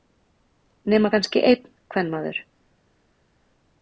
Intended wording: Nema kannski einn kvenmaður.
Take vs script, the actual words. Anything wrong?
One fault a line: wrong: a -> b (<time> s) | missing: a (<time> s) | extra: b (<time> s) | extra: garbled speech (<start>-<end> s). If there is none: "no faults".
no faults